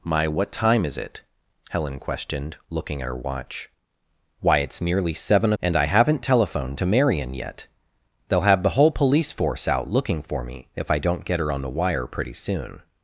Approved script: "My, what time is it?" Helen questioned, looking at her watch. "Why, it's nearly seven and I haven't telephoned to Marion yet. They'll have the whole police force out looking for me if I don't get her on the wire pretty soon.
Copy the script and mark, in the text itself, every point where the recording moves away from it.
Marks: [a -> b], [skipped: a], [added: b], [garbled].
"My, what time is it?" Helen questioned, looking at her watch. "Why, it's nearly seven and I haven't telephoned to Marion yet. They'll have the whole police force out looking for me if I don't get her on the wire pretty soon.